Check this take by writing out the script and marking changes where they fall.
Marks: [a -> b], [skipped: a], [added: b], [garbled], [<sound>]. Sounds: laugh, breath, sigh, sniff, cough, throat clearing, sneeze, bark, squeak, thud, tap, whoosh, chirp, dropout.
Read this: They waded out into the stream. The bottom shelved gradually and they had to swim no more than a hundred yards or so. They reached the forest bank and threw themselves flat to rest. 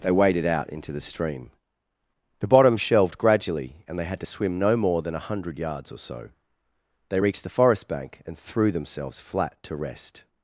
They waded out into the stream. The bottom shelved gradually and they had to swim no more than a hundred yards or so. They reached the forest bank and threw themselves flat to rest.